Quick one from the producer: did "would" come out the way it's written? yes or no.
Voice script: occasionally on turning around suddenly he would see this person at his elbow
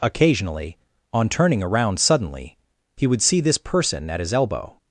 yes